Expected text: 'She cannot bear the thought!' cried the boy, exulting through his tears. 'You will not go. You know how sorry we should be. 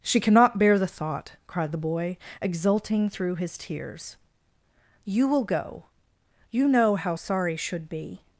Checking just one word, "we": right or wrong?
wrong